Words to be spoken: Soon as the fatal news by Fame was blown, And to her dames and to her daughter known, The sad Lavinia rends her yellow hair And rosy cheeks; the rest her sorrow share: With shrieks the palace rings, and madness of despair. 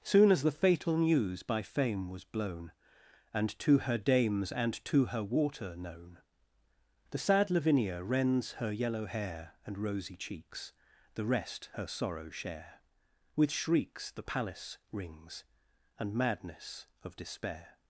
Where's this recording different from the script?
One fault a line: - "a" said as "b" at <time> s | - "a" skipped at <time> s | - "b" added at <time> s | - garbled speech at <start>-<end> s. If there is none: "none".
- "daughter" said as "water" at 5.2 s